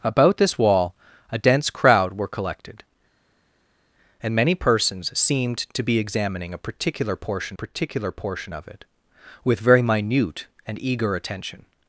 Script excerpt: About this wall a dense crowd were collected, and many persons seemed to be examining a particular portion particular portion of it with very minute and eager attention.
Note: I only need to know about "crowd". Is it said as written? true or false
true